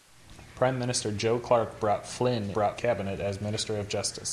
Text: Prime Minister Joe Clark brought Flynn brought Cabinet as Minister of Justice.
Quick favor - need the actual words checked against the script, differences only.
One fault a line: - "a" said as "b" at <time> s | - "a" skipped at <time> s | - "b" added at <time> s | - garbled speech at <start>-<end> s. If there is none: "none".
none